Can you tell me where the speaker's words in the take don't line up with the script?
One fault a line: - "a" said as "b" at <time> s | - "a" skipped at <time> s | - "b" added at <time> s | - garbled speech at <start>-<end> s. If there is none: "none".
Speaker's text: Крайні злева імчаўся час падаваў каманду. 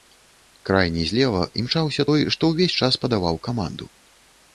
- "той што ўвесь" added at 2.1 s